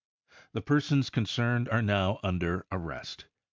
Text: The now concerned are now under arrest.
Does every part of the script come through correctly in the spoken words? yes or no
no